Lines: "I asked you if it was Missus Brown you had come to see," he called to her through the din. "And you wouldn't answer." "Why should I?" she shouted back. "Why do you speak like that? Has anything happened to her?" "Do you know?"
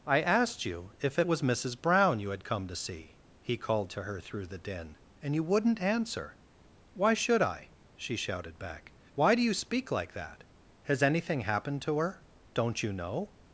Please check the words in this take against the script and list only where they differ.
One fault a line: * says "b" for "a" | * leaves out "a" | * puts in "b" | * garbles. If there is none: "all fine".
* says "Don't" for "Do"